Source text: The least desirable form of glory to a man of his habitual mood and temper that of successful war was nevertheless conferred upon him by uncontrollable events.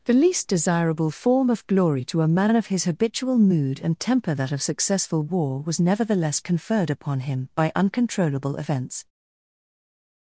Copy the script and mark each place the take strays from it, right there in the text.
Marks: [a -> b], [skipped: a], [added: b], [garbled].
The least desirable form of glory to a man of his habitual mood and temper that of successful war was nevertheless conferred upon him by uncontrollable events.